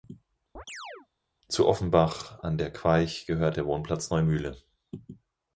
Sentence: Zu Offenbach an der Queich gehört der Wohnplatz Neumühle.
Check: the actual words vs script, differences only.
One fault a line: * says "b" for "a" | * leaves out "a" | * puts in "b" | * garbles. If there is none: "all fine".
all fine